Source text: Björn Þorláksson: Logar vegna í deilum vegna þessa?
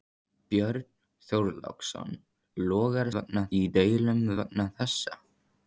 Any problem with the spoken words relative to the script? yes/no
no